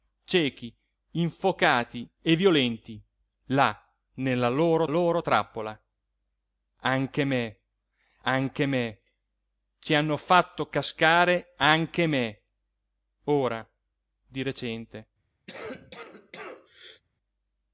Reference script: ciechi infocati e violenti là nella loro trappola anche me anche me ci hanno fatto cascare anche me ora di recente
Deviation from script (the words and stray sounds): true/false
true